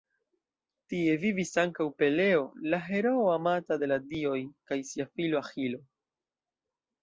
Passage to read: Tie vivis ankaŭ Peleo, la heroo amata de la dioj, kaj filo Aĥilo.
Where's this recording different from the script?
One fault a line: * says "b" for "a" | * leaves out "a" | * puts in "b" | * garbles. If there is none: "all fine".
* puts in "sia"